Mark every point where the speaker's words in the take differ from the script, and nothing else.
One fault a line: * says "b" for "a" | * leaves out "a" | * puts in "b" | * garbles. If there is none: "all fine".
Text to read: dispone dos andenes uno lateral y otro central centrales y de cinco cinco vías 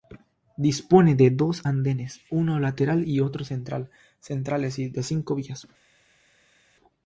* puts in "de"
* leaves out "cinco"